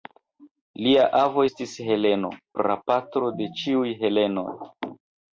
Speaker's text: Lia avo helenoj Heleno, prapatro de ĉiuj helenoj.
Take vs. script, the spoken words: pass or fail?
fail